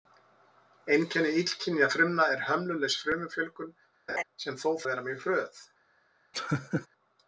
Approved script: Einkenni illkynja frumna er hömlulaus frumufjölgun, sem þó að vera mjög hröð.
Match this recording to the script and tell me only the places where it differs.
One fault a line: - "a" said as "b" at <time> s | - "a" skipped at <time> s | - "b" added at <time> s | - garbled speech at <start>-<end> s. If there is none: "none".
none